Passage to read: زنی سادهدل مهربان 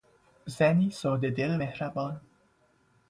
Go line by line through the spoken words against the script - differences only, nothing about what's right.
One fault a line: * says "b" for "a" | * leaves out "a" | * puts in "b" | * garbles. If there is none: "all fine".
all fine